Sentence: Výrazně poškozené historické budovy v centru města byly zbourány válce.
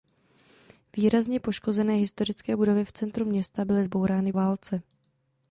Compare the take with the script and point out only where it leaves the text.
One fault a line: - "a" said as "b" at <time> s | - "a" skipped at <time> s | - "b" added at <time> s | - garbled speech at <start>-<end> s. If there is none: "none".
none